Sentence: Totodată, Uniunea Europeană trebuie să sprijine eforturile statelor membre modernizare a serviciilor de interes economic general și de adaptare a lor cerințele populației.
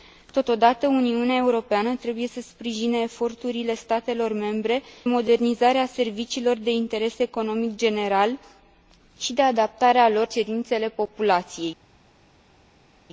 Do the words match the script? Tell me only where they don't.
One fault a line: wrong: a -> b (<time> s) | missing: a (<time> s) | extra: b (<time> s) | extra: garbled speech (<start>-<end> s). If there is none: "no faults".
no faults